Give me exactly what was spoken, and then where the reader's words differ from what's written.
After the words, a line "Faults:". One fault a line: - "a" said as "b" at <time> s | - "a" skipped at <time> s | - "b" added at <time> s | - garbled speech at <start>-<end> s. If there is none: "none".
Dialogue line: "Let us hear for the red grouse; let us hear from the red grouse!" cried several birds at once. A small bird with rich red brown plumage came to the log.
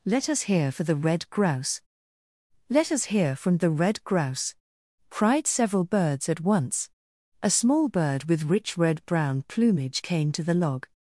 "Let us hear for the red grouse; let us hear from the red grouse!" cried several birds at once. A small bird with rich red brown plumage came to the log.
Faults:
none